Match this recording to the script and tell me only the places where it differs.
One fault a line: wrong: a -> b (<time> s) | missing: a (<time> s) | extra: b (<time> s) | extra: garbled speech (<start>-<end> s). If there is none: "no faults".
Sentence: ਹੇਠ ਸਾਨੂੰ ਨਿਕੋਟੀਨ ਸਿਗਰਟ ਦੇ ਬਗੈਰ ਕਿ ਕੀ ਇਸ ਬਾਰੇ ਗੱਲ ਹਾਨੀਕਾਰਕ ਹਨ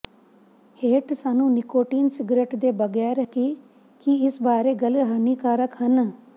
no faults